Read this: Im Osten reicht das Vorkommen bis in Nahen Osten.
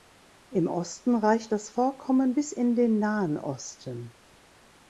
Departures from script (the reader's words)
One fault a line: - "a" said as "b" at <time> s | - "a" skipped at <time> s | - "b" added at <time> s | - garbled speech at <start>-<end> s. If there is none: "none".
- "den" added at 2.8 s